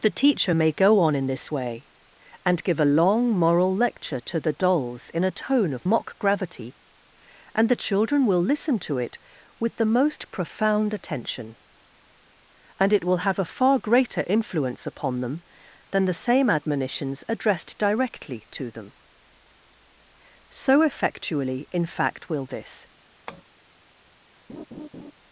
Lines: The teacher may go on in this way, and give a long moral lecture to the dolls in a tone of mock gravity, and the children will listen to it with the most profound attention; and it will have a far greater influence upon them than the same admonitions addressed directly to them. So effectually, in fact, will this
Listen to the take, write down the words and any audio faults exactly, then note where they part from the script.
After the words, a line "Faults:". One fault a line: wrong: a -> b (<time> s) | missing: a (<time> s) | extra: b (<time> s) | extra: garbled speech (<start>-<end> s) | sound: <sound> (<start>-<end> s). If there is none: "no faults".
The teacher may go on in this way, and give a long moral lecture to the dolls in a tone of mock gravity, and the children will listen to it with the most profound attention; and it will have a far greater influence upon them than the same admonitions addressed directly to them. So effectually, in fact, will this
Faults:
sound: tap (23.3-23.4 s)
sound: laugh (24.5-25.1 s)